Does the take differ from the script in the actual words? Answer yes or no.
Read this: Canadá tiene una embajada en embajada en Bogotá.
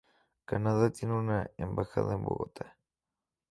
yes